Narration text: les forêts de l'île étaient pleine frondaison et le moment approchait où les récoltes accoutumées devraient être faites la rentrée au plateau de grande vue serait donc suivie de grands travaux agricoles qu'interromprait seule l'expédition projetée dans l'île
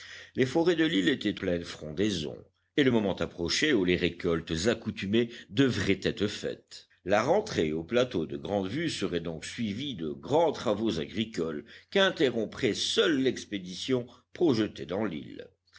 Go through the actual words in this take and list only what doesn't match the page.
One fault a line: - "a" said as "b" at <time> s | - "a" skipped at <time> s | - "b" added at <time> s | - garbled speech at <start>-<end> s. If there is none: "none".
none